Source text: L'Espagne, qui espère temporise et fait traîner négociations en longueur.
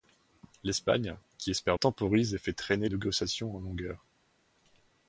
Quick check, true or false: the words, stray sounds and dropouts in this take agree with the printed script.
true